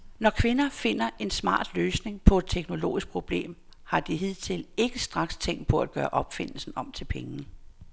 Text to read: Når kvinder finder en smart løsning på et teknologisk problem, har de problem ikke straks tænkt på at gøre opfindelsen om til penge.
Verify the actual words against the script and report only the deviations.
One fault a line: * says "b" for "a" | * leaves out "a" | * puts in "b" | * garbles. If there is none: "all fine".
* says "hidtil" for "problem"